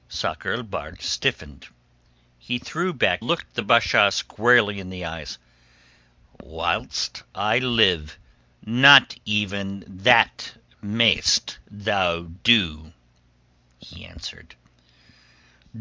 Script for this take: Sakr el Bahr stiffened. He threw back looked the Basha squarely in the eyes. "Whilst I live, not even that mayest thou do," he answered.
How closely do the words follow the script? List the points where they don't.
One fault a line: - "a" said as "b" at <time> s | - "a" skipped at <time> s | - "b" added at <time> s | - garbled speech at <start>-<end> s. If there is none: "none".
none